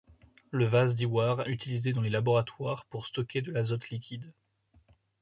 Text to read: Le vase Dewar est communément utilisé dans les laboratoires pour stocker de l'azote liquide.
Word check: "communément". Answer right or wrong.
wrong